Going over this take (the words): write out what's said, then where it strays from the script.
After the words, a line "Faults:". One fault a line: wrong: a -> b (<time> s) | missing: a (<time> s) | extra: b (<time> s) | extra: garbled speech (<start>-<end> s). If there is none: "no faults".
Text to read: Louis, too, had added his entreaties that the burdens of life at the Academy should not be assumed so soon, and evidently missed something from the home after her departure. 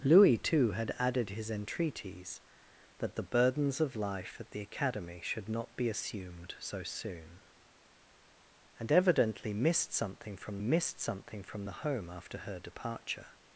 Louis, too, had added his entreaties that the burdens of life at the Academy should not be assumed so soon, and evidently missed something from missed something from the home after her departure.
Faults:
extra: missed something from (10.6 s)